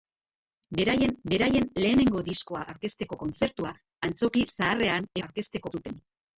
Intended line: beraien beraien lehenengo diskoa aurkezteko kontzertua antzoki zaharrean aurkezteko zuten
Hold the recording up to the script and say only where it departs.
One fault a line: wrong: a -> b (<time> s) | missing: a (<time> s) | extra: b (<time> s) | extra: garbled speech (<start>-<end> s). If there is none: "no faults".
no faults